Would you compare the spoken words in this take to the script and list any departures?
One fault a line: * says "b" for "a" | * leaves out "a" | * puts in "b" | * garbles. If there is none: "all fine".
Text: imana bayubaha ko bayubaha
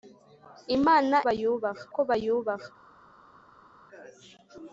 all fine